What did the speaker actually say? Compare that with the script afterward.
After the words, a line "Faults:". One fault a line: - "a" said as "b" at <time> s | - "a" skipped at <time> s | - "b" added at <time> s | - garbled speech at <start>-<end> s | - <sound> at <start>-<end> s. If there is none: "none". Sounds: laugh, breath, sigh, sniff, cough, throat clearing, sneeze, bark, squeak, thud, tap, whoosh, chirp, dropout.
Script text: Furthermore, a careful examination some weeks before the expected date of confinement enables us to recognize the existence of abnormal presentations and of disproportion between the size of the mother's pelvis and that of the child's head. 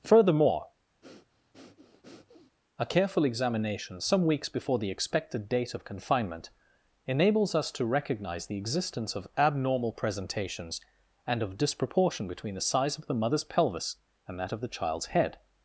Furthermore, a careful examination some weeks before the expected date of confinement enables us to recognize the existence of abnormal presentations and of disproportion between the size of the mother's pelvis and that of the child's head.
Faults:
- breath at 1.0-2.6 s